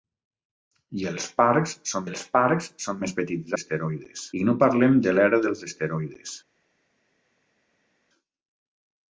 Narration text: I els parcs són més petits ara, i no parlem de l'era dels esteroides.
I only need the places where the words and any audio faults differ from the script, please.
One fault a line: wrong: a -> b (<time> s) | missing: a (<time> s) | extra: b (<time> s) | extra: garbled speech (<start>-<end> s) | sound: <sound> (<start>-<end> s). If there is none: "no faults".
extra: els parcs són (2.1 s)
wrong: ara -> esteroides (3.6 s)